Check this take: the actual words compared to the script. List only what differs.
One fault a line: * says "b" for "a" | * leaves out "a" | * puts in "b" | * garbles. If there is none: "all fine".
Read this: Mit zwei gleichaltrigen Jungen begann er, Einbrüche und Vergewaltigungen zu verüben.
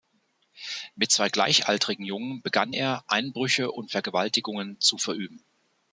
all fine